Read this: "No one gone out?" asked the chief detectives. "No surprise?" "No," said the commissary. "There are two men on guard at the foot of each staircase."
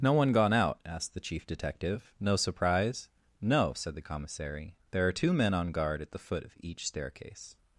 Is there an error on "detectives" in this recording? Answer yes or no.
yes